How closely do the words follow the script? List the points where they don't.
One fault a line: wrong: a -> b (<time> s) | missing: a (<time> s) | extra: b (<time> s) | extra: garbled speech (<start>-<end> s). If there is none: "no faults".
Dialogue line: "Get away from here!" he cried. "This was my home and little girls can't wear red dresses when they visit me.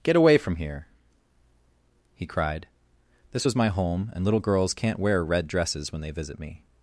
no faults